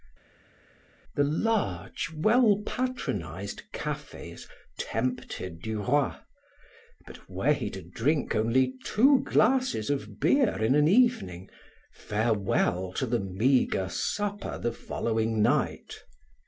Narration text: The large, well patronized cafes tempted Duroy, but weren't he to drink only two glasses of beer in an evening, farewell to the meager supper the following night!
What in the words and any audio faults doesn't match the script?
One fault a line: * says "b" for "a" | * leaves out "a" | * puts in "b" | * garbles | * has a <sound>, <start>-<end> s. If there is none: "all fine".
* says "were" for "weren't"